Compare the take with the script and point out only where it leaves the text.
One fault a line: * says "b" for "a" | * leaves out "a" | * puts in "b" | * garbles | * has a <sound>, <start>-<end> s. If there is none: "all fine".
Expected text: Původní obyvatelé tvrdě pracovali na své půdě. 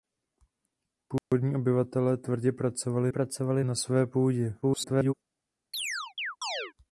* has a dropout, 1.2-1.3 s
* puts in "pracovali"
* garbles
* has a chirp, 5.7-6.7 s